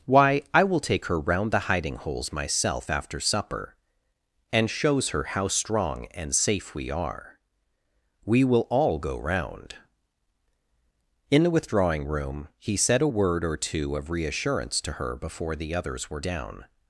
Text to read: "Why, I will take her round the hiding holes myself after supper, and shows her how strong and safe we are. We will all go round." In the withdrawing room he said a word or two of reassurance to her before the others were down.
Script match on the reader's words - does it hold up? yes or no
yes